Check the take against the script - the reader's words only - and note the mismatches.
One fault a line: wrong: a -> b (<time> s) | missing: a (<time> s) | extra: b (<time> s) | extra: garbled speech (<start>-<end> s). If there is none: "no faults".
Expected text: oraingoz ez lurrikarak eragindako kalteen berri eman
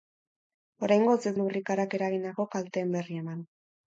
no faults